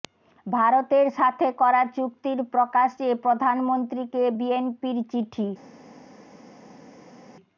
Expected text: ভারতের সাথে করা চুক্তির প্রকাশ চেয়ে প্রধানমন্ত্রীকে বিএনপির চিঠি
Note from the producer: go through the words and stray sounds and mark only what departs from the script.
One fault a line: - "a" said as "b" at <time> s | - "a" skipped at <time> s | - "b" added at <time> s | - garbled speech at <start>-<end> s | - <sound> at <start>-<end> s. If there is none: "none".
none